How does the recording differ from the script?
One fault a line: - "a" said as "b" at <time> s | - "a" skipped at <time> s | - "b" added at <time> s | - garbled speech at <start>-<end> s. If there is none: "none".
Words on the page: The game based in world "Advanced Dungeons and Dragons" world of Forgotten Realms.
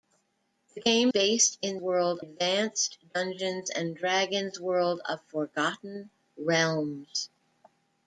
none